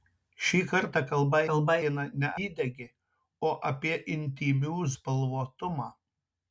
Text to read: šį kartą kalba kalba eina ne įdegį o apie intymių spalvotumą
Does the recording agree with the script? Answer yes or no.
yes